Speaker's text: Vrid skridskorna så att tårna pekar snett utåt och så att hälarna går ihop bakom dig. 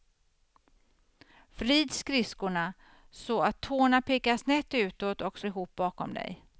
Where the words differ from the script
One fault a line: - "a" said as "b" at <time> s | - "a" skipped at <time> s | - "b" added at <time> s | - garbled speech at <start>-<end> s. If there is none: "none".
- "att hälarna går" skipped at 5.5 s